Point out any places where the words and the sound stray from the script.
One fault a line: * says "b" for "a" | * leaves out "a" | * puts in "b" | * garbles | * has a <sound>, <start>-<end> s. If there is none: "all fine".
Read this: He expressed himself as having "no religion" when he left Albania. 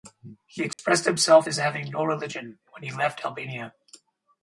* has a dropout, 0.7-0.8 s